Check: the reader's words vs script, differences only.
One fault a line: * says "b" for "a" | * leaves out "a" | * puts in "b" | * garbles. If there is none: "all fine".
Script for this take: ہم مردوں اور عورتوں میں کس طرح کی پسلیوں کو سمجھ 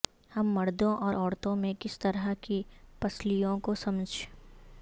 all fine